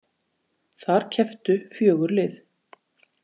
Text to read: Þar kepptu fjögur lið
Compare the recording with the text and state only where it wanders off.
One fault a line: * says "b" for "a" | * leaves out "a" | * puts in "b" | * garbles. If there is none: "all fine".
all fine